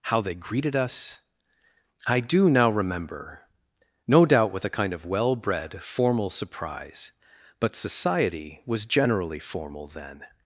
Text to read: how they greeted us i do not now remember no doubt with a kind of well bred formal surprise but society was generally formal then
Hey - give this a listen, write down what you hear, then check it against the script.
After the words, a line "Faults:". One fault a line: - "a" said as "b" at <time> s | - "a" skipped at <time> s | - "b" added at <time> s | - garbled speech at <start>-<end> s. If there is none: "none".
how they greeted us i do now remember no doubt with a kind of well bred formal surprise but society was generally formal then
Faults:
- "not" skipped at 2.5 s